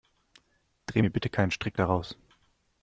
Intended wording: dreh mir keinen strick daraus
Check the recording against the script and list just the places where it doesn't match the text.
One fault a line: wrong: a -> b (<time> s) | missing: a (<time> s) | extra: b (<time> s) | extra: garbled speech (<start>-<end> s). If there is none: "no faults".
extra: bitte (1.1 s)